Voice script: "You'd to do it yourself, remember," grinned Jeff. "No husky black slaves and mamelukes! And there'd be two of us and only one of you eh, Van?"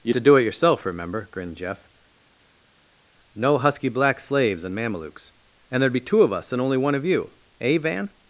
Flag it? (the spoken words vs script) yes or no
no